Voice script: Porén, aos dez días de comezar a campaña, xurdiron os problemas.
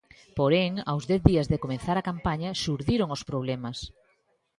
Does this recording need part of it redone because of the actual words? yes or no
no